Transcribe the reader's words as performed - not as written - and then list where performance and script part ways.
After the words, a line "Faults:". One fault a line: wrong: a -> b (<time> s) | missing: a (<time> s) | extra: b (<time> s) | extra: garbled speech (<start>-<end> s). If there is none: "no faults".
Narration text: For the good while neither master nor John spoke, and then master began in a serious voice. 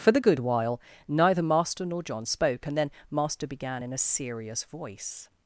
For the good while neither master nor John spoke, and then master began in a serious voice.
Faults:
no faults